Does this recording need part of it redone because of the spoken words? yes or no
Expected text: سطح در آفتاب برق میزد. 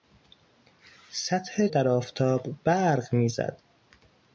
no